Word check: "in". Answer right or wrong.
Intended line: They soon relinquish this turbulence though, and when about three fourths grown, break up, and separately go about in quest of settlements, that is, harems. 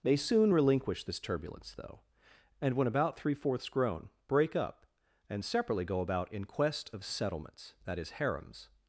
right